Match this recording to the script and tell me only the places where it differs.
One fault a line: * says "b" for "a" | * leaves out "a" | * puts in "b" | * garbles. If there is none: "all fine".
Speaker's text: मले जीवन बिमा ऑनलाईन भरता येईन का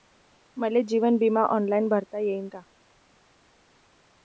all fine